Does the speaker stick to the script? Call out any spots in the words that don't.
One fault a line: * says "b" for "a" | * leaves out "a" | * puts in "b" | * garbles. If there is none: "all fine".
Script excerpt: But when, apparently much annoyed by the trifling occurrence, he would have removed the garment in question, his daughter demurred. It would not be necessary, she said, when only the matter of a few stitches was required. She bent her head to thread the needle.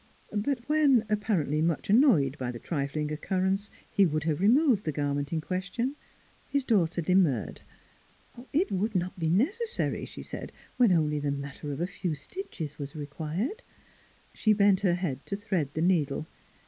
all fine